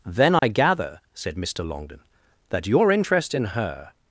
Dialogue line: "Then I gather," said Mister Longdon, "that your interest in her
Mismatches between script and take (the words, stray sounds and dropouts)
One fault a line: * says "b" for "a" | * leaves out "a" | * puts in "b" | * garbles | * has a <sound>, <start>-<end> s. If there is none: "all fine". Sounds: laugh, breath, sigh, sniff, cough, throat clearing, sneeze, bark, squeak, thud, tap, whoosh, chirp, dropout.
* has a dropout, 0.4-0.4 s